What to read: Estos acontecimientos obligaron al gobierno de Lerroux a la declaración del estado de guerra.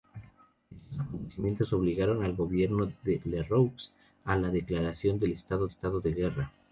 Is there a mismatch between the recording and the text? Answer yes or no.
yes